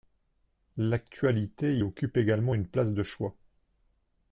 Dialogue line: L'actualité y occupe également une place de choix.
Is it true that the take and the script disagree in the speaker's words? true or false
false